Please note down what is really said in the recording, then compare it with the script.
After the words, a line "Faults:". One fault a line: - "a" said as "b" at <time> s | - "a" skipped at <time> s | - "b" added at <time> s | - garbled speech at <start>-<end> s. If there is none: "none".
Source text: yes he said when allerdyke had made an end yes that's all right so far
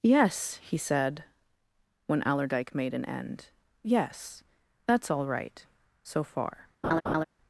yes he said when allerdyke made an end yes that's all right so far
Faults:
- "had" skipped at 2.8 s